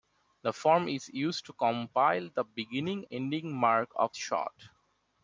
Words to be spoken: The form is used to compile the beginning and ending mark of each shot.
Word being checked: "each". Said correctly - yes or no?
no